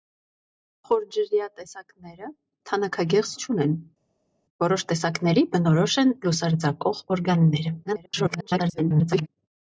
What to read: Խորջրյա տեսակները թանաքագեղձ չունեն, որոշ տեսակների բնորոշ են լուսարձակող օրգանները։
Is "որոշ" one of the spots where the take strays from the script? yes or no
no